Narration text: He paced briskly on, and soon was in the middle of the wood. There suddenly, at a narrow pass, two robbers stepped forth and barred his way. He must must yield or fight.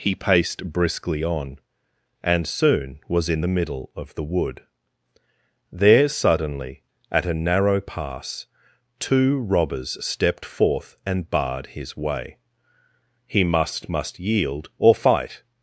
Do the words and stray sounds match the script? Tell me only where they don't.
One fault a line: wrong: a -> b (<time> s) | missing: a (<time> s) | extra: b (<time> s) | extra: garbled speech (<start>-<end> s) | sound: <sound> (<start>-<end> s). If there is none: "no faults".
no faults